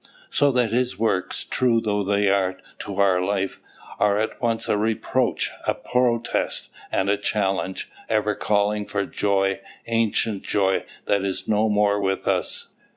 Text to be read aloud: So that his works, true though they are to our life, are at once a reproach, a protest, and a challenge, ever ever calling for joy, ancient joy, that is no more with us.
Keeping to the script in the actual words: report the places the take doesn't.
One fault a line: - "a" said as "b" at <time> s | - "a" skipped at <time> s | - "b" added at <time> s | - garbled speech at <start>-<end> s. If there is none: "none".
- "ever" skipped at 8.3 s